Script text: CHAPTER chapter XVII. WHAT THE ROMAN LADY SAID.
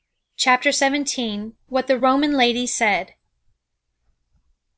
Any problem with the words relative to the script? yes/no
yes